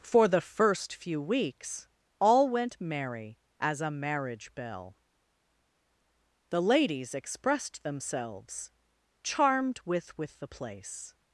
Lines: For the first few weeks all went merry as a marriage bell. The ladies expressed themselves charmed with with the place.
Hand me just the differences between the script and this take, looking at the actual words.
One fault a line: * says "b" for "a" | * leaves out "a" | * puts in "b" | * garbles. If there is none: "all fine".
all fine